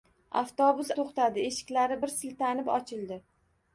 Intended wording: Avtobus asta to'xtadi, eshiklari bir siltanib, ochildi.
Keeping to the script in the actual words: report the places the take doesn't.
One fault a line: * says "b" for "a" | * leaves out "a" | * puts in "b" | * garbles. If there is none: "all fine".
* leaves out "asta"